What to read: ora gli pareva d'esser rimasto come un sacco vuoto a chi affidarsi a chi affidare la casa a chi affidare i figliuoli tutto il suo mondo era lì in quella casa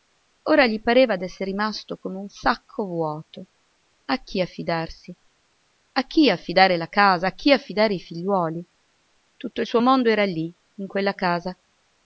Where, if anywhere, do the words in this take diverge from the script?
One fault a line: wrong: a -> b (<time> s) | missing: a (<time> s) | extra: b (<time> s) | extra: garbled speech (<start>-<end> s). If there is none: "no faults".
no faults